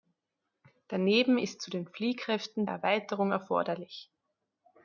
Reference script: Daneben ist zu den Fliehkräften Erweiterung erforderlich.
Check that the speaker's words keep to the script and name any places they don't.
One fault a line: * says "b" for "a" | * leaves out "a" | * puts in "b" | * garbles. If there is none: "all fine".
all fine